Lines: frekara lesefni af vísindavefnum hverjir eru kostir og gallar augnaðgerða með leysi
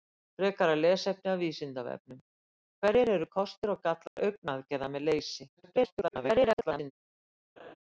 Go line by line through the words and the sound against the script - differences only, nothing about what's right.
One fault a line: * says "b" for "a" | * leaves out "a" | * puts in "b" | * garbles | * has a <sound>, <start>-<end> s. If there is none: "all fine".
* has a dropout, 4.1-4.2 s
* garbles
* has a laugh, 7.6-7.8 s